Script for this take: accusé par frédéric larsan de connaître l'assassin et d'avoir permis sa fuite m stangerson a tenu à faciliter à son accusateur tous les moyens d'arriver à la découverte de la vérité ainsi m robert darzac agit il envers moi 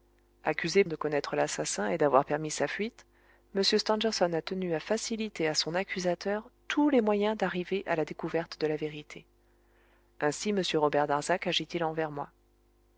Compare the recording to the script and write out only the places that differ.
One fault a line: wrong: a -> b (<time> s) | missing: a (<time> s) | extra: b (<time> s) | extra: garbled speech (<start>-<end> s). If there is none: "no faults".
missing: par frédéric larsan (0.8 s)